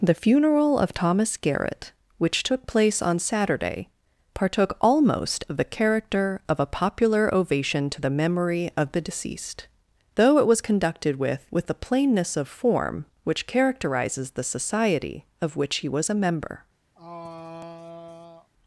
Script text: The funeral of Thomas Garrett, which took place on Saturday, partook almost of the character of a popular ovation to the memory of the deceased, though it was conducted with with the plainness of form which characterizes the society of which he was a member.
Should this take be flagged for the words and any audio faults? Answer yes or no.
yes